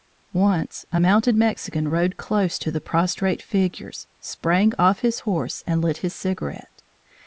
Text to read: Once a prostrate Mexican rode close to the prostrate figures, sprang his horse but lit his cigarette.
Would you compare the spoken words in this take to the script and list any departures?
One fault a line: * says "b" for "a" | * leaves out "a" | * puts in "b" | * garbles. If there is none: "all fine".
* says "mounted" for "prostrate"
* puts in "off"
* says "and" for "but"